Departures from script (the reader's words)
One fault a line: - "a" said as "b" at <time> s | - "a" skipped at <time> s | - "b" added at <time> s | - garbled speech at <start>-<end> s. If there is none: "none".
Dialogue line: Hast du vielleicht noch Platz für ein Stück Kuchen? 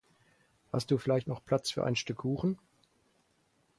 none